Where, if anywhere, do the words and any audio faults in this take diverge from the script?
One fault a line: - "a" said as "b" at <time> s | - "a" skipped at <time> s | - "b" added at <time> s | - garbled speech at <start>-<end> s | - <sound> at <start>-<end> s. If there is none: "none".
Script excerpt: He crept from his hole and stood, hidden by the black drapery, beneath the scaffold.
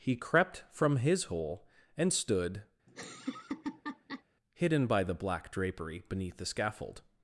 - laugh at 2.9-4.2 s